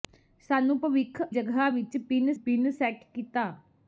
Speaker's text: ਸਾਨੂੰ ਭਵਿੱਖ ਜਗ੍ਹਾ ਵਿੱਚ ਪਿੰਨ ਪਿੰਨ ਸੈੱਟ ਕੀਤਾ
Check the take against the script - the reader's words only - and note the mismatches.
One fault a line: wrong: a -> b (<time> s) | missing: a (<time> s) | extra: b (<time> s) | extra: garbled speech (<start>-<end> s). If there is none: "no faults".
no faults